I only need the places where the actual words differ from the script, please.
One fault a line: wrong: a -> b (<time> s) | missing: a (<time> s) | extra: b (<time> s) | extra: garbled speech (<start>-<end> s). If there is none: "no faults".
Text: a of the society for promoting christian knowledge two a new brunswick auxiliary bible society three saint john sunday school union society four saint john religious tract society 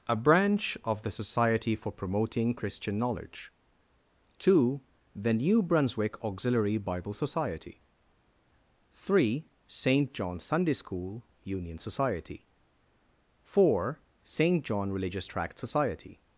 extra: branch (0.1 s)
wrong: a -> the (5.1 s)